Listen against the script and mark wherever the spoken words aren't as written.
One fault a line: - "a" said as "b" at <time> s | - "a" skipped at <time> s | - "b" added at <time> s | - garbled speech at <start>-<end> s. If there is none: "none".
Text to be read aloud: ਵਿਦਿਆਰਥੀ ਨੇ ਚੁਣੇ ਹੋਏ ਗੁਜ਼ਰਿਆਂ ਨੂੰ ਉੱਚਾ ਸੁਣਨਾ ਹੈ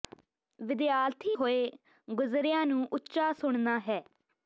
- "ਨੇ ਚੁਣੇ" skipped at 1.4 s